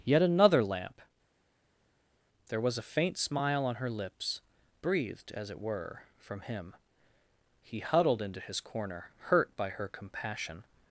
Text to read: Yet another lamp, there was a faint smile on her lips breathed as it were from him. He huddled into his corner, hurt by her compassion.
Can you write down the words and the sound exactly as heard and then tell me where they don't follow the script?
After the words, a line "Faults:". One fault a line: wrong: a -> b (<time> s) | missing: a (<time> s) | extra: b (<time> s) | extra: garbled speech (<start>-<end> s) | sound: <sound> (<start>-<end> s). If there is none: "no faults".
Yet another lamp, there was a faint smile on her lips breathed as it were from him. He huddled into his corner, hurt by her compassion.
Faults:
no faults